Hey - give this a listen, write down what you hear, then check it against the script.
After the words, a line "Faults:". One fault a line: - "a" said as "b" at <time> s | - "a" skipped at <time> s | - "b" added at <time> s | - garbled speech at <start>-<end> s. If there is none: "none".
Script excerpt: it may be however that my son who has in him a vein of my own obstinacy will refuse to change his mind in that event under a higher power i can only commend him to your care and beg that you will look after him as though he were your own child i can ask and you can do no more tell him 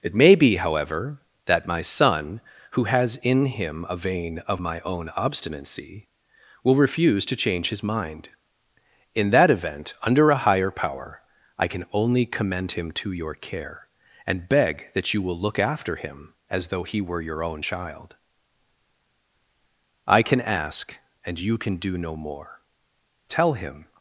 it may be however that my son who has in him a vein of my own obstinacy will refuse to change his mind in that event under a higher power i can only commend him to your care and beg that you will look after him as though he were your own child i can ask and you can do no more tell him
Faults:
none